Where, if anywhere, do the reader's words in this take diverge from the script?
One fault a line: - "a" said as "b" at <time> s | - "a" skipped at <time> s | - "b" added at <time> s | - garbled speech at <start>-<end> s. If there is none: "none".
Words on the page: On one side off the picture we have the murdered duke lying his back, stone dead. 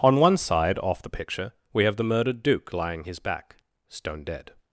none